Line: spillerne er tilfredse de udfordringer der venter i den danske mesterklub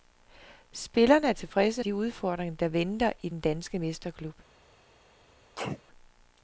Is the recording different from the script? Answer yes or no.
no